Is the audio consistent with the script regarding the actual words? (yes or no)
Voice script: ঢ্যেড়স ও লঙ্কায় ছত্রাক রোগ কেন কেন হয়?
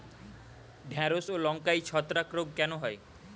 no